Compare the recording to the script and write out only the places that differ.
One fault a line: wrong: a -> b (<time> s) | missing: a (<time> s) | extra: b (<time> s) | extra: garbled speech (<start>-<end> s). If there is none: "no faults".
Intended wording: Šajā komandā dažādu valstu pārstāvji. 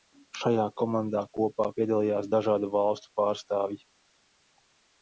extra: kopā piedalījās (1.4 s)